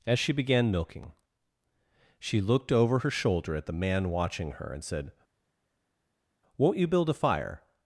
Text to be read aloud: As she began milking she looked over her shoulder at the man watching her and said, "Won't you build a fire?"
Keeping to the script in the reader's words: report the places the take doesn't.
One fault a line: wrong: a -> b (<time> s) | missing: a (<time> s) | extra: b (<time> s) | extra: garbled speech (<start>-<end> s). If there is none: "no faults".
no faults